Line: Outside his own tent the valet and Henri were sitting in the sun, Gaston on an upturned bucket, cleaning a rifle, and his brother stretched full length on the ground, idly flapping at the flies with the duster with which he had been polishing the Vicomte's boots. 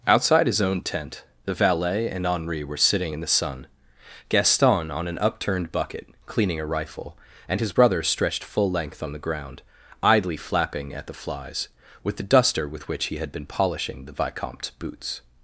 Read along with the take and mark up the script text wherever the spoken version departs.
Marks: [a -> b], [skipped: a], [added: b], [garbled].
Outside his own tent the valet and Henri were sitting in the sun, Gaston on an upturned bucket, cleaning a rifle, and his brother stretched full length on the ground, idly flapping at the flies with the duster with which he had been polishing the Vicomte's boots.